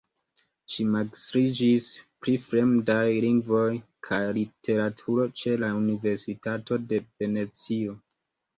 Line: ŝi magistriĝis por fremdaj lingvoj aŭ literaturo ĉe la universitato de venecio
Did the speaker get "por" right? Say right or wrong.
wrong